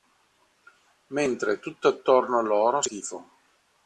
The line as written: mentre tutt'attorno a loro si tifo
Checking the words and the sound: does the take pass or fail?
pass